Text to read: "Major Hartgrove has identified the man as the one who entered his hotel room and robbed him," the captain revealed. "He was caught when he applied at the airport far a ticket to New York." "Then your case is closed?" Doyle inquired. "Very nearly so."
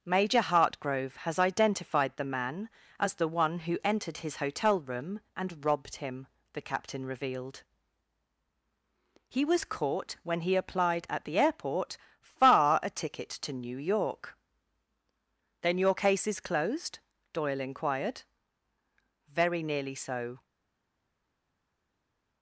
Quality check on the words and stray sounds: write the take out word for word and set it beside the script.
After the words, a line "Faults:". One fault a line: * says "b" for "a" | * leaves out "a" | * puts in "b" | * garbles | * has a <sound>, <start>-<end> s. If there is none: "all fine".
"Major Hartgrove has identified the man as the one who entered his hotel room and robbed him," the captain revealed. "He was caught when he applied at the airport far a ticket to New York." "Then your case is closed?" Doyle inquired. "Very nearly so."
Faults:
all fine